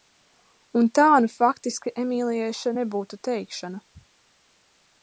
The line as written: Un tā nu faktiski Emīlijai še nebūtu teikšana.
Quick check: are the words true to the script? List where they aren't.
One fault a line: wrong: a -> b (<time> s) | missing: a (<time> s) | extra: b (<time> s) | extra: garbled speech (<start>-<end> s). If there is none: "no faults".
no faults